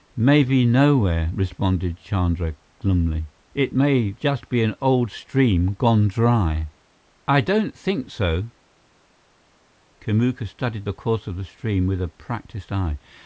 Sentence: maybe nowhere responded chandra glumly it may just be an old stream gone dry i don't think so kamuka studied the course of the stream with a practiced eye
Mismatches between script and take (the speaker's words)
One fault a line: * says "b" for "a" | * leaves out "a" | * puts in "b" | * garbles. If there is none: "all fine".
all fine